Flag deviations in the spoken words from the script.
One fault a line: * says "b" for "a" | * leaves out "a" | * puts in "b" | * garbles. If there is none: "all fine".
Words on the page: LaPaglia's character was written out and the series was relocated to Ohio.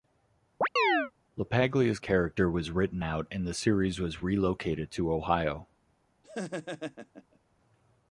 all fine